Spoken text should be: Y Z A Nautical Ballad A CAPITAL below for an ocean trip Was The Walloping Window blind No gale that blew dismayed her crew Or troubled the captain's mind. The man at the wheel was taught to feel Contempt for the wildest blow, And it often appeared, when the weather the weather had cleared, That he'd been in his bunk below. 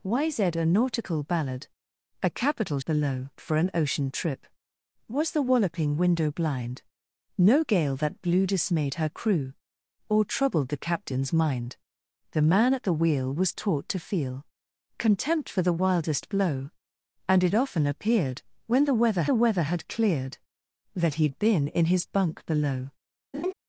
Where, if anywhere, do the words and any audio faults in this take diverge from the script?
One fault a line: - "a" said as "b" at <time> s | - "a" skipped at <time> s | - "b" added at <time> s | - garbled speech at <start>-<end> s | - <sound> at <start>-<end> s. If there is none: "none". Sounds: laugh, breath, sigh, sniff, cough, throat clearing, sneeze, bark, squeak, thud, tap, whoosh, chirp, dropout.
- laugh at 23.3-23.5 s